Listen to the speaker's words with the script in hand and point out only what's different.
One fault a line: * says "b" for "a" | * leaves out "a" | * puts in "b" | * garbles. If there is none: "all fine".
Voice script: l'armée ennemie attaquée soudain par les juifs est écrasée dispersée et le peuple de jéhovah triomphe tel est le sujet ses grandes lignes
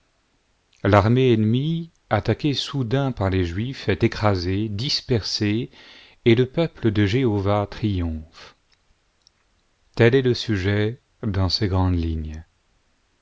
* puts in "dans"